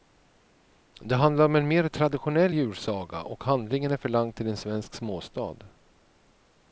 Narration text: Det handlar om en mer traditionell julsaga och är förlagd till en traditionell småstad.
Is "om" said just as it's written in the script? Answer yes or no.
yes